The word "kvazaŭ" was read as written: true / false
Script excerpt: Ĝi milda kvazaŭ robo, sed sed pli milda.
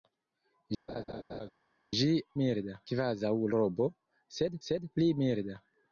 true